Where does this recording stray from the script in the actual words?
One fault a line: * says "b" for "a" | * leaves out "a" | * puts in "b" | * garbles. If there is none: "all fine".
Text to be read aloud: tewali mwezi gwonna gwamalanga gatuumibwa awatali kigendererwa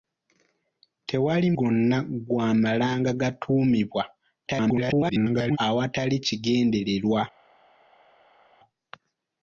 * leaves out "mwezi"
* garbles